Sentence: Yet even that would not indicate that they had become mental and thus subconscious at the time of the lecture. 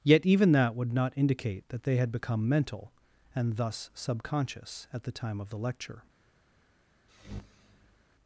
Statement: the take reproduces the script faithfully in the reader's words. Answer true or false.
true